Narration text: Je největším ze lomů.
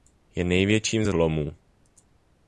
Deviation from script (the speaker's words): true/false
false